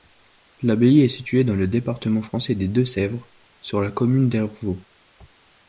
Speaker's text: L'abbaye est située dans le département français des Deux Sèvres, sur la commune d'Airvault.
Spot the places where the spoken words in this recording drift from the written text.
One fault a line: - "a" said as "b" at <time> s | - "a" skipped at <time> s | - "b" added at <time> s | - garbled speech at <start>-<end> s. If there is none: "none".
none